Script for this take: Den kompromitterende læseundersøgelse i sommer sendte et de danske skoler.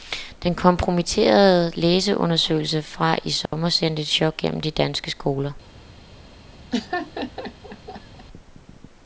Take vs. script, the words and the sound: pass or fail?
fail